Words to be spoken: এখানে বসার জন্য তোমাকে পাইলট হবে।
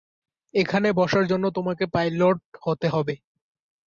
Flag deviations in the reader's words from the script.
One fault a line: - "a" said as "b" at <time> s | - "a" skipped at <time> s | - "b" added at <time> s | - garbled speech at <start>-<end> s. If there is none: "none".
- "হতে" added at 2.6 s